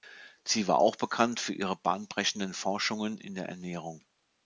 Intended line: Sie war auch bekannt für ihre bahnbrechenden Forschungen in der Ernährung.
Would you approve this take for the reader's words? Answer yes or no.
yes